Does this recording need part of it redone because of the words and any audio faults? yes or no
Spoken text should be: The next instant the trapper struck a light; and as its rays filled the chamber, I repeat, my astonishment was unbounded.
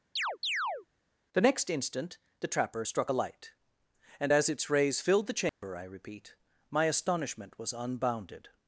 yes